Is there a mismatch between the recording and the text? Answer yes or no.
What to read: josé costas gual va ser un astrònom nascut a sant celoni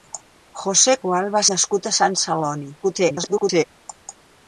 yes